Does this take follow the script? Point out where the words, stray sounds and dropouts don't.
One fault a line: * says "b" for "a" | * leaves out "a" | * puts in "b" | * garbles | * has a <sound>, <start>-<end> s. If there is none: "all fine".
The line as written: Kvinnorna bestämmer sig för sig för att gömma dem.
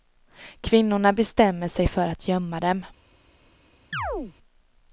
* leaves out "sig för"
* has a chirp, 3.9-4.3 s